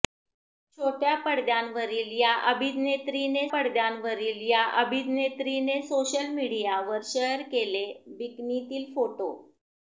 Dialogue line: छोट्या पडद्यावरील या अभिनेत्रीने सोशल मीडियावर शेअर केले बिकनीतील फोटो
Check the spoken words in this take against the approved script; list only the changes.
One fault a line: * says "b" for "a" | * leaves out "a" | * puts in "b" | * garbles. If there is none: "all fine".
* puts in "पडद्यावरील या अभिनेत्रीने"